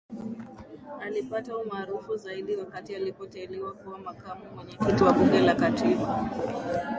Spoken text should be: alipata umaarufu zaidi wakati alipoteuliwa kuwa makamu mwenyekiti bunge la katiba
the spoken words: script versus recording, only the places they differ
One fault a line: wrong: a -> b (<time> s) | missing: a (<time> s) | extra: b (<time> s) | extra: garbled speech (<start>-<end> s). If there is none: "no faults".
extra: wa (5.0 s)